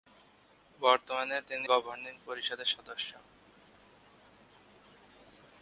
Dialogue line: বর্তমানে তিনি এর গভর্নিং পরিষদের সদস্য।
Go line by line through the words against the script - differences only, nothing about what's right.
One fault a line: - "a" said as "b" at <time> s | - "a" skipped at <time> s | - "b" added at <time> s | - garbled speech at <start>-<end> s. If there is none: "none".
- "এর" skipped at 1.7 s